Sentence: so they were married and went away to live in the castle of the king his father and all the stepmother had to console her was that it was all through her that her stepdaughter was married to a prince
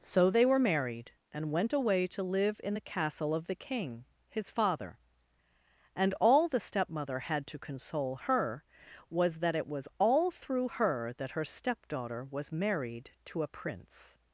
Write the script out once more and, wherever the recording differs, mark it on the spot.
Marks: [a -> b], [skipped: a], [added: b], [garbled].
so they were married and went away to live in the castle of the king his father and all the stepmother had to console her was that it was all through her that her stepdaughter was married to a prince